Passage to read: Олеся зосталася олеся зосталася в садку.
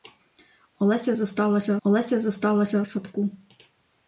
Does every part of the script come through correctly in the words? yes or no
yes